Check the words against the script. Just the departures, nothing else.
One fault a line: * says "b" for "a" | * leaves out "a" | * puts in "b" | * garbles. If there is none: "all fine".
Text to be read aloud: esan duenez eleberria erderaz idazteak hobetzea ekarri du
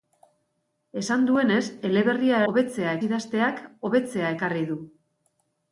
* says "hobetzea" for "erderaz"